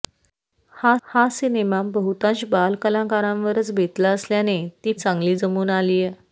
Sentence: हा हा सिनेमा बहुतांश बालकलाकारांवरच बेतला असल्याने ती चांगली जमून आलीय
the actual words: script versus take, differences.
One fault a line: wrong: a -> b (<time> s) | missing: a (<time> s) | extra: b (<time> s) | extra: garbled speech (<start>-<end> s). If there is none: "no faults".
no faults